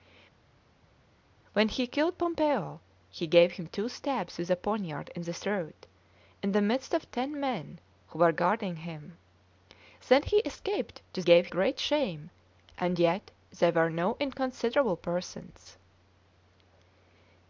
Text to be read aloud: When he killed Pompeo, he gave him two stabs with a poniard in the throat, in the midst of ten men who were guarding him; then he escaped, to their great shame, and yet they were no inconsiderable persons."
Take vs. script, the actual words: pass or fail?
fail